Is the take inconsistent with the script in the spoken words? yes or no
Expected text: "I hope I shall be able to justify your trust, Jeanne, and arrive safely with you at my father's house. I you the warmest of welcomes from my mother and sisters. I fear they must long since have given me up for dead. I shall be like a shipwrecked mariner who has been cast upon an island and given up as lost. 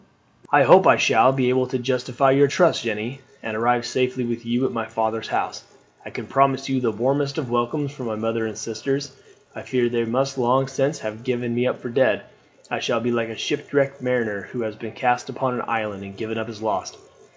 yes